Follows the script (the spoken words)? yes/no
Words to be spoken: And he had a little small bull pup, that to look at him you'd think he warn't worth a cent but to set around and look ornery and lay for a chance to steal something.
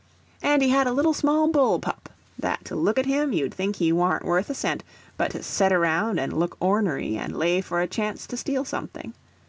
yes